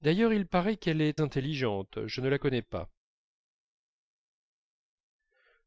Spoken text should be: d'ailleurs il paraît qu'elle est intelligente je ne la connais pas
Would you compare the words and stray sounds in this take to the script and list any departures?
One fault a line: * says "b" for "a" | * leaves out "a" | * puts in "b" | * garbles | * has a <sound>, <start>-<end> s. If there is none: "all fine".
all fine